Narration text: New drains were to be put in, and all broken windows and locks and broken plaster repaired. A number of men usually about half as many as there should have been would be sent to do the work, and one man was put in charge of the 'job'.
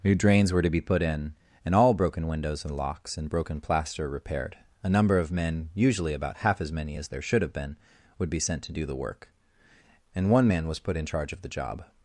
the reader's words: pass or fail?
pass